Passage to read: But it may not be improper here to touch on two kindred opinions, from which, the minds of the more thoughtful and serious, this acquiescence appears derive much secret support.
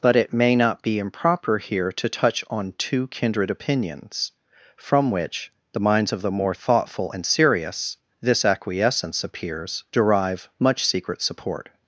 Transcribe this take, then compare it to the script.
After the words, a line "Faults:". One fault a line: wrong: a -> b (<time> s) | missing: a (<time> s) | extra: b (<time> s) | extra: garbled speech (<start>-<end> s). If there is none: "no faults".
But it may not be improper here to touch on two kindred opinions, from which, the minds of the more thoughtful and serious, this acquiescence appears derive much secret support.
Faults:
no faults